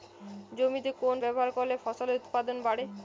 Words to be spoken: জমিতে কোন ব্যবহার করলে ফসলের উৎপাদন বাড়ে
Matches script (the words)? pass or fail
pass